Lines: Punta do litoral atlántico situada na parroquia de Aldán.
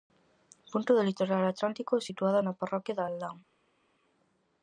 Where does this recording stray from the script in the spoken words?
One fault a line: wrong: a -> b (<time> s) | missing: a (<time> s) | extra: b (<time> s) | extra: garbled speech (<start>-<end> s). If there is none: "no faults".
no faults